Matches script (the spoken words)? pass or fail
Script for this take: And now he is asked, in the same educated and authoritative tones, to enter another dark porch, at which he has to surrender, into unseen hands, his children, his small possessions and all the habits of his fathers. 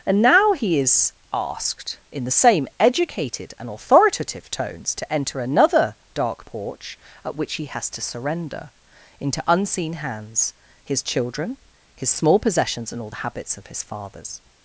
pass